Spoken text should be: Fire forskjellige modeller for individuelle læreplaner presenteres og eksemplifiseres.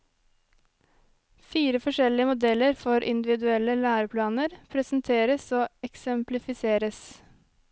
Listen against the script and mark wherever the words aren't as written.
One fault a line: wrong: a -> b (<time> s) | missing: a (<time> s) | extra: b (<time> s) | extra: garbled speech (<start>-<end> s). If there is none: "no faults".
no faults